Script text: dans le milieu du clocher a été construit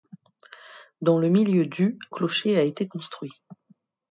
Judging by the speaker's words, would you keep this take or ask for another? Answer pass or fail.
pass